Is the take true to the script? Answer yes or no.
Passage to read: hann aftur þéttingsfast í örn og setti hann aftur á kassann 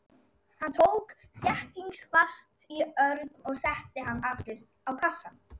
no